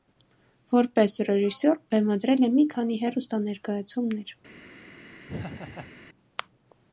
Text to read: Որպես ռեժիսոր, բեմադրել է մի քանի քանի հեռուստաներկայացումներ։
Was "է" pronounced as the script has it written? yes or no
yes